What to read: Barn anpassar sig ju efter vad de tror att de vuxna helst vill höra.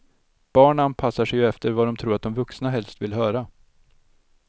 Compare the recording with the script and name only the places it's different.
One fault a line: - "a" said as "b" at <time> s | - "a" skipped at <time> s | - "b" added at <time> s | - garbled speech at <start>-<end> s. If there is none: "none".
none